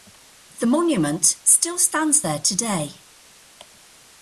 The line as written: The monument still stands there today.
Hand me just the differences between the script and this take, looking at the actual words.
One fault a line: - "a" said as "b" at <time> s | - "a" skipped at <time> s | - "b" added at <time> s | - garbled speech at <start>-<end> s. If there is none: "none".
none